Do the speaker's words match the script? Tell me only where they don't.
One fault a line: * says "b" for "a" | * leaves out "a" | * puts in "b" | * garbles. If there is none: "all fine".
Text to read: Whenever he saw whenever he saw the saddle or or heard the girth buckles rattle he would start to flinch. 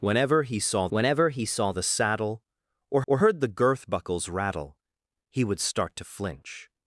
all fine